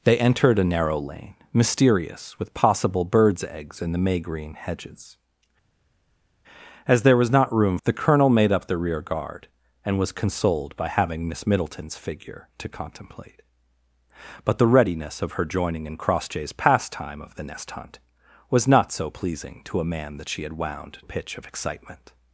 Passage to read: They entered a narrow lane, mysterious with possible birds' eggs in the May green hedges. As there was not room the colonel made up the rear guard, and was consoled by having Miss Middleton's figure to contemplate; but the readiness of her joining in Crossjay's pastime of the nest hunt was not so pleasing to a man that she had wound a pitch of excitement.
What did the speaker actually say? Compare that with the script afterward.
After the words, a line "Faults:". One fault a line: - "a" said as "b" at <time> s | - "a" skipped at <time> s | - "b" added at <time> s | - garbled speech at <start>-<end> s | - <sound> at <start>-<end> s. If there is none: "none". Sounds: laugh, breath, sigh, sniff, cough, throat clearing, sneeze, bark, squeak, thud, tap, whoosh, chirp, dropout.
They entered a narrow lane, mysterious with possible birds' eggs in the May green hedges. As there was not room the colonel made up the rear guard, and was consoled by having Miss Middleton's figure to contemplate; but the readiness of her joining in Crossjay's pastime of the nest hunt was not so pleasing to a man that she had wound a pitch of excitement.
Faults:
none